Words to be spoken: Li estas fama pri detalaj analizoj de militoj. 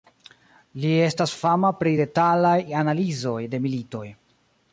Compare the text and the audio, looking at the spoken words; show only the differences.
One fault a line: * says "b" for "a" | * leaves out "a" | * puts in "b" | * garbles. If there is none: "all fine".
all fine